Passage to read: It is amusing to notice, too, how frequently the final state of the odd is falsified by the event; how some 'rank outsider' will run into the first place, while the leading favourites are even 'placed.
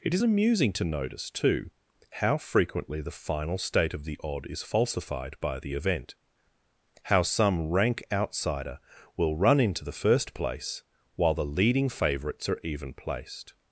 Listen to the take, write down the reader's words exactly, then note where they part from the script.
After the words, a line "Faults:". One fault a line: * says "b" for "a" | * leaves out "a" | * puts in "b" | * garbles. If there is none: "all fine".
It is amusing to notice, too, how frequently the final state of the odd is falsified by the event; how some 'rank outsider' will run into the first place, while the leading favourites are even 'placed.
Faults:
all fine